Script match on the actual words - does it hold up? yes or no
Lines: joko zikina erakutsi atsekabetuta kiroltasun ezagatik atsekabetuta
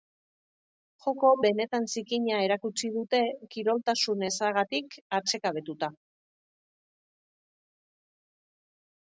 no